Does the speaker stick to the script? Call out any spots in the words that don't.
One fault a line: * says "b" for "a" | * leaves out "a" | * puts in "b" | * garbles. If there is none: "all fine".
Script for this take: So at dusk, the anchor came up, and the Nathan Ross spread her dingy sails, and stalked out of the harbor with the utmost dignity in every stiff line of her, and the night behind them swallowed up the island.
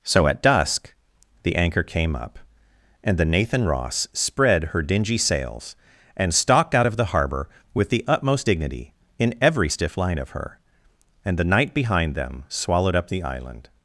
all fine